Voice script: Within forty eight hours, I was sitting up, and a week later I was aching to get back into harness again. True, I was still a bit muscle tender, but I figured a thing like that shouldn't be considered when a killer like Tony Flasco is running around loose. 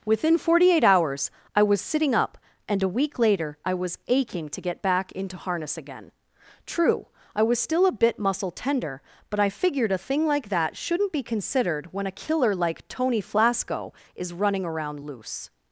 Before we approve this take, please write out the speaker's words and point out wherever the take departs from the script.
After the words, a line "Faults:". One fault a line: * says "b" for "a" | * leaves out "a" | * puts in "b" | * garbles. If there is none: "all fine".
Within forty eight hours, I was sitting up, and a week later I was aching to get back into harness again. True, I was still a bit muscle tender, but I figured a thing like that shouldn't be considered when a killer like Tony Flasco is running around loose.
Faults:
all fine